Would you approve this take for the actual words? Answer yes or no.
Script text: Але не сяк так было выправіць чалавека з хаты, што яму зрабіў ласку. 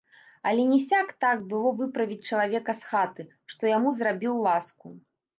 yes